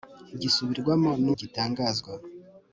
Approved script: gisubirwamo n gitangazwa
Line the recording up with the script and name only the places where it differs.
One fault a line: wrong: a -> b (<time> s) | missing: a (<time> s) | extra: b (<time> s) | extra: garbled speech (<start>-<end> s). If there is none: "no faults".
no faults